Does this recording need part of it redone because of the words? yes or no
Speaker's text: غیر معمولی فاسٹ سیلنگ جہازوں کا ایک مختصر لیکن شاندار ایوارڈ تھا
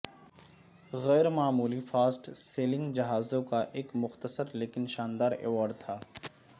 no